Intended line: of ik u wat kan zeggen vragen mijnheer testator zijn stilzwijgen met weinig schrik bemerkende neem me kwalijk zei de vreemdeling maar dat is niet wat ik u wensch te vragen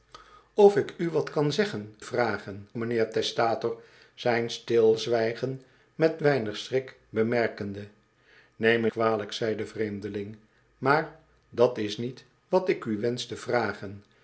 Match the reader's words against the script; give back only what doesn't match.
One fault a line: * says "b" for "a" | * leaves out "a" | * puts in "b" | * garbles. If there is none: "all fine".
all fine